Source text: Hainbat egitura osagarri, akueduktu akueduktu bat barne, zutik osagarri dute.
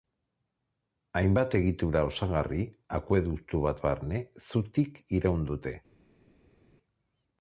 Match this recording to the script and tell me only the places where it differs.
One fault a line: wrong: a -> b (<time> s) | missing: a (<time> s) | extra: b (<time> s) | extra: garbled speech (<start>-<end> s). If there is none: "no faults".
missing: akueduktu (3.6 s)
wrong: osagarri -> iraun (5.2 s)